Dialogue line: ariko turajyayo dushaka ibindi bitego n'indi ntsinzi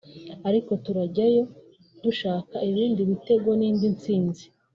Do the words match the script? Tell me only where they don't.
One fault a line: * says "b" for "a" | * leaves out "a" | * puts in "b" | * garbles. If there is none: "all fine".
all fine